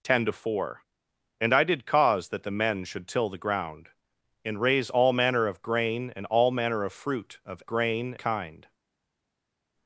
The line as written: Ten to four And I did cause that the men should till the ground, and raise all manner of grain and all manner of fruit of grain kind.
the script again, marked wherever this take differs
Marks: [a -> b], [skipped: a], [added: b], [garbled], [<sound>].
Ten to four And I did cause that the men should till the ground, and raise all manner of grain and all manner of fruit of grain kind.